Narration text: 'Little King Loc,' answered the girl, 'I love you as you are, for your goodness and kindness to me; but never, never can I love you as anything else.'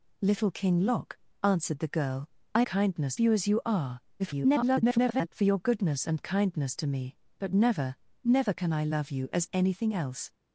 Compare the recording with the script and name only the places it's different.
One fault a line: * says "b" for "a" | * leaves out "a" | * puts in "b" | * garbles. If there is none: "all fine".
* says "kindness" for "love"
* garbles